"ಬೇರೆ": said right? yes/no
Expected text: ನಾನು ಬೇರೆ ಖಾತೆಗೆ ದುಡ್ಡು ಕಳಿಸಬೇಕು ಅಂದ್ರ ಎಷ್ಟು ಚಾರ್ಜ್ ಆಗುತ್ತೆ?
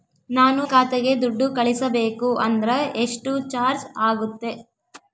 no